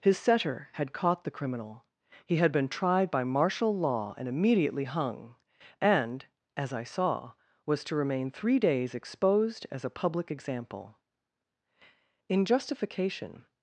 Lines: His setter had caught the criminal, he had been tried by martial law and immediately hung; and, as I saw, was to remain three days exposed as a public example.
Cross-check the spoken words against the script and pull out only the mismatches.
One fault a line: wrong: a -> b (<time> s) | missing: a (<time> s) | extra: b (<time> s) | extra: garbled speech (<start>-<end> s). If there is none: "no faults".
extra: In justification (12.3 s)